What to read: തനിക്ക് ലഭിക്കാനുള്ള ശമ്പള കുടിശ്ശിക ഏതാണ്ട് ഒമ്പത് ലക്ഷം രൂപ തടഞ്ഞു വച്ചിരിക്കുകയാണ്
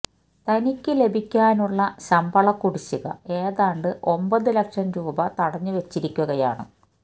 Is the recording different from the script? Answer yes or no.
no